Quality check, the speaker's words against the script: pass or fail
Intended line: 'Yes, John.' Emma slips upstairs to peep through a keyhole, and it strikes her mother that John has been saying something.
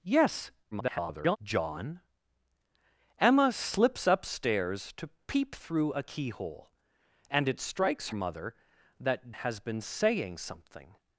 fail